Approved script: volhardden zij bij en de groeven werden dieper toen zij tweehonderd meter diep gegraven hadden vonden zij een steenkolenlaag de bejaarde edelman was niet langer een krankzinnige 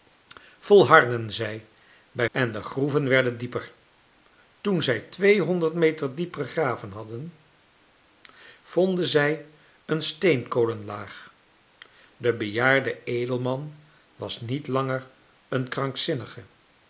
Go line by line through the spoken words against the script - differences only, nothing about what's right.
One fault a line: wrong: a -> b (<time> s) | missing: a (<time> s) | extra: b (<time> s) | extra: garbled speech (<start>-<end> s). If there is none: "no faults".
no faults